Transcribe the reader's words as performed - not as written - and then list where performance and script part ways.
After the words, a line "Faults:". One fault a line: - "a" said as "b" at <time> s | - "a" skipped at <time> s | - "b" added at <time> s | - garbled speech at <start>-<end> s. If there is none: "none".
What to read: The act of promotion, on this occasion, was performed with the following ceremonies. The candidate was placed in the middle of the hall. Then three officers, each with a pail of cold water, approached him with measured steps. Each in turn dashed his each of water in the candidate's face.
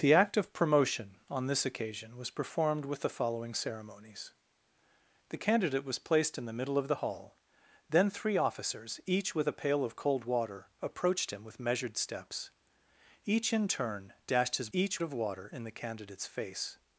The act of promotion, on this occasion, was performed with the following ceremonies. The candidate was placed in the middle of the hall. Then three officers, each with a pail of cold water, approached him with measured steps. Each in turn dashed his each of water in the candidate's face.
Faults:
none